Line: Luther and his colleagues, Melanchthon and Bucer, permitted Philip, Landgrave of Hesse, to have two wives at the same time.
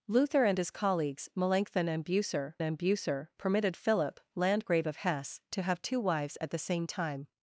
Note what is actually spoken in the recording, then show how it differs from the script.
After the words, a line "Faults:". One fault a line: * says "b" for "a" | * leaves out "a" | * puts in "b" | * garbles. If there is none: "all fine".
Luther and his colleagues, Melanchthon and Bucer and Bucer, permitted Philip, Landgrave of Hesse, to have two wives at the same time.
Faults:
* puts in "and Bucer"